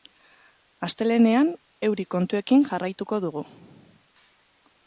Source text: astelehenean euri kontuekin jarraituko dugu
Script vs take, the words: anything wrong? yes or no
no